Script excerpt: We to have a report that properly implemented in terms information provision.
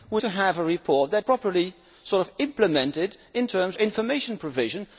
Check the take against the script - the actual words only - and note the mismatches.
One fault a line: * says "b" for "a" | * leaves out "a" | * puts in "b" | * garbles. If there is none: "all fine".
all fine